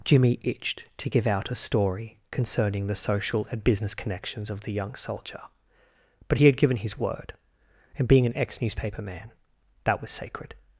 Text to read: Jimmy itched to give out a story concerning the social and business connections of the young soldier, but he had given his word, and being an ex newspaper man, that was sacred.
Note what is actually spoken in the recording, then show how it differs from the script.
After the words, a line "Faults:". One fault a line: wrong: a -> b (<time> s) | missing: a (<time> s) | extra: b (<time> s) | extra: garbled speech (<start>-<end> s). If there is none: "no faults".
Jimmy itched to give out a story concerning the social and business connections of the young soldier, but he had given his word, and being an ex newspaper man, that was sacred.
Faults:
no faults